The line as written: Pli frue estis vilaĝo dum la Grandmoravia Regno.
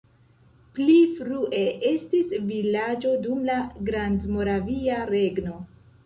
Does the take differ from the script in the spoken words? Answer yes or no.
no